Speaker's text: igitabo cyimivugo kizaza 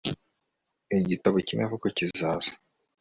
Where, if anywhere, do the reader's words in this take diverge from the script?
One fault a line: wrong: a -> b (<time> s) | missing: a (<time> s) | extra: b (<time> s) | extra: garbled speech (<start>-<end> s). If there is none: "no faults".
no faults